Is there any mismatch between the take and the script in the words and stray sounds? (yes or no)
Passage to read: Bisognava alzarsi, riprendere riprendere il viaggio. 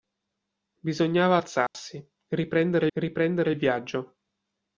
yes